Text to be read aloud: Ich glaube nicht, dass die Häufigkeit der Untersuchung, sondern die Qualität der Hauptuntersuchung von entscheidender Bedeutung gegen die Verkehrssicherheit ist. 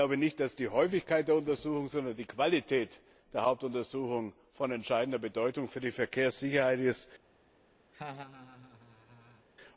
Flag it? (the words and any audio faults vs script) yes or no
yes